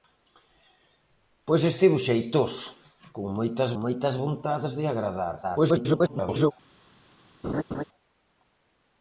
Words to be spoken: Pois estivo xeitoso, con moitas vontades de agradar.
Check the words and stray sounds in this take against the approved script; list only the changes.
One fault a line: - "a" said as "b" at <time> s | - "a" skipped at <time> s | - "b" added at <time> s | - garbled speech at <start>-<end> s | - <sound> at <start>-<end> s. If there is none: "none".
- "moitas" added at 3.8 s
- garbled speech at 5.4-6.5 s
- laugh at 7.4-7.8 s